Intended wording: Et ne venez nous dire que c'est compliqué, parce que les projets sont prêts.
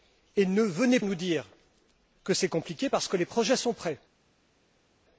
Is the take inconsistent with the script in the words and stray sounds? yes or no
no